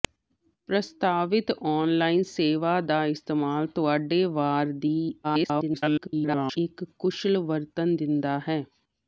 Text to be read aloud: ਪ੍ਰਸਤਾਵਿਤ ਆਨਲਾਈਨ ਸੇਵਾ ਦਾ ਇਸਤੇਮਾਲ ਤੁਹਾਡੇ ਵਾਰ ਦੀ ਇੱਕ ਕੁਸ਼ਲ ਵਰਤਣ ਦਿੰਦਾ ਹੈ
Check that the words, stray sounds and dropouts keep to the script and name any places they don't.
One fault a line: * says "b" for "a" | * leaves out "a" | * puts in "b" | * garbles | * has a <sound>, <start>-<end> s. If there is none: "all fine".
* garbles